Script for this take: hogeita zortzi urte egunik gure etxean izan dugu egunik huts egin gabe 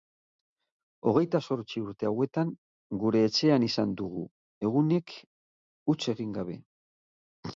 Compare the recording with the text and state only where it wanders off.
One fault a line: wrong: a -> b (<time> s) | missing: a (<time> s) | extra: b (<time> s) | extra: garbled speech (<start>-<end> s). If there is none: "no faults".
wrong: egunik -> hauetan (2.1 s)